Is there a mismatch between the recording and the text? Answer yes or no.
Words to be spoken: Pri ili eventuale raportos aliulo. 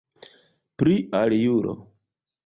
yes